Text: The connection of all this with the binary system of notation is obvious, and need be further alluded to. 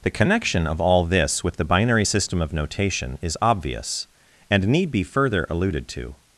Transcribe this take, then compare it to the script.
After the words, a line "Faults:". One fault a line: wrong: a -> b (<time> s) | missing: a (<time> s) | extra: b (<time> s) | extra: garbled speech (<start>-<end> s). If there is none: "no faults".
The connection of all this with the binary system of notation is obvious, and need be further alluded to.
Faults:
no faults